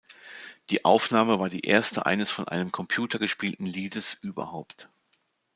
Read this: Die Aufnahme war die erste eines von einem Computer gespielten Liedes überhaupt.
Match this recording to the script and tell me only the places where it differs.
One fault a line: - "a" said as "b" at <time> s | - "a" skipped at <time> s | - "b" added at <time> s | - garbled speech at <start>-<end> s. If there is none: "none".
none